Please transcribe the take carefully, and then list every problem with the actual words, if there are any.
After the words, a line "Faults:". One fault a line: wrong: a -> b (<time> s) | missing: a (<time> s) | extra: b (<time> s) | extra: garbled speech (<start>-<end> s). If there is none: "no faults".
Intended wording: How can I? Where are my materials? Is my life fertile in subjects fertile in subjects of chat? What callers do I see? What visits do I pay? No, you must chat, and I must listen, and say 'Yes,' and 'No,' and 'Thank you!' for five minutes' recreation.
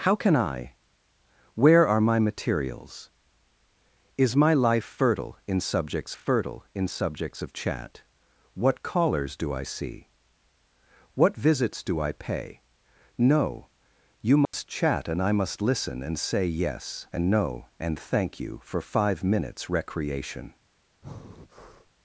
How can I? Where are my materials? Is my life fertile in subjects fertile in subjects of chat? What callers do I see? What visits do I pay? No, you must chat, and I must listen, and say 'Yes,' and 'No,' and 'Thank you!' for five minutes' recreation.
Faults:
no faults